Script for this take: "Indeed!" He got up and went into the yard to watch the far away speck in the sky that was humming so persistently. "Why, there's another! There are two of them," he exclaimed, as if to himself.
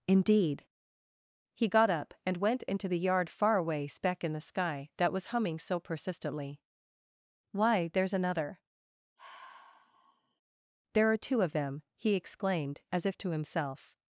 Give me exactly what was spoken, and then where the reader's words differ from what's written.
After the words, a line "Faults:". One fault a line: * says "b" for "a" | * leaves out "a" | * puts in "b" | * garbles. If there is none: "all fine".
"Indeed!" He got up and went into the yard far away speck in the sky that was humming so persistently. "Why, there's another! There are two of them," he exclaimed, as if to himself.
Faults:
* leaves out "to watch the"